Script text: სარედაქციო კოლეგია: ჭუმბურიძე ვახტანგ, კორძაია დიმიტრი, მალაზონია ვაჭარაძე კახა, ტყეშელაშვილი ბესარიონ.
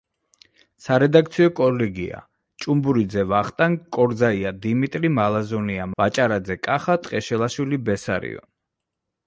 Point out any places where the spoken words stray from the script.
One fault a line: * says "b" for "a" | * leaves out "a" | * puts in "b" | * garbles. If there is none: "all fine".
all fine